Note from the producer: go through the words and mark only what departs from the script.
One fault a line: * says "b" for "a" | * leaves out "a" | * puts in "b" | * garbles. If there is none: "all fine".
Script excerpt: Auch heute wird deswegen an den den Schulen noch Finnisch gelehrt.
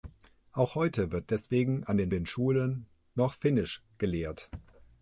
all fine